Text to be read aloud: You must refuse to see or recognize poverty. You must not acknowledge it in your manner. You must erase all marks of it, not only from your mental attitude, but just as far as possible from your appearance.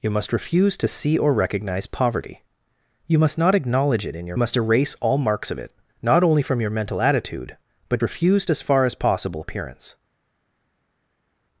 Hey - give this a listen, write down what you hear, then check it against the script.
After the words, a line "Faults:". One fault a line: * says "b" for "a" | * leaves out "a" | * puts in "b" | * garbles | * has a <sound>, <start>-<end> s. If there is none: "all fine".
You must refuse to see or recognize poverty. You must not acknowledge it in your must erase all marks of it, not only from your mental attitude, but refuse as far as possible appearance.
Faults:
* leaves out "manner You"
* says "refuse" for "just"
* leaves out "from your"